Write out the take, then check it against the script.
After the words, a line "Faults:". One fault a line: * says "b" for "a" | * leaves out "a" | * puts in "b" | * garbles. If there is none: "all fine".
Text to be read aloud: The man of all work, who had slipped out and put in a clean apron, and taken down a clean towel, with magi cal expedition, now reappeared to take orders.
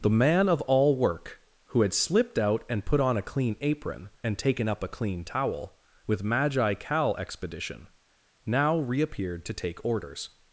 The man of all work, who had slipped out and put on a clean apron, and taken up a clean towel, with magi cal expedition, now reappeared to take orders.
Faults:
* says "on" for "in"
* says "up" for "down"